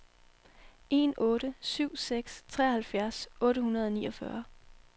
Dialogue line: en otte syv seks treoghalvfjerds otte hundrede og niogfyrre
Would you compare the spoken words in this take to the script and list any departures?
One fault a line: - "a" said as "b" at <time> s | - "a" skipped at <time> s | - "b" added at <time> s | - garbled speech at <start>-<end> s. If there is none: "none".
none